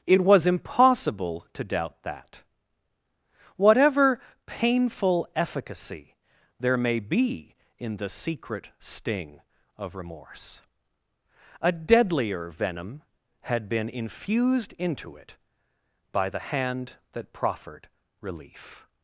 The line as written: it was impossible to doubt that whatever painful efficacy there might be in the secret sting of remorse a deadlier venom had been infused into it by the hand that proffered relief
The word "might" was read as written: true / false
false